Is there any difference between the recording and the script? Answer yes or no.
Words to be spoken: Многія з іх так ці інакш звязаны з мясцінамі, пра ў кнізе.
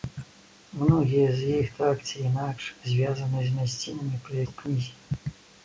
no